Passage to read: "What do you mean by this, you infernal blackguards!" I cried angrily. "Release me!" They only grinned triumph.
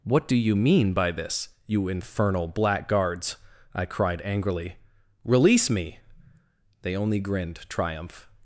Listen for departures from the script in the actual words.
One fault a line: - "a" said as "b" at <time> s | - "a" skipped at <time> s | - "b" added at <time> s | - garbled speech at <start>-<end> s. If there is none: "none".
none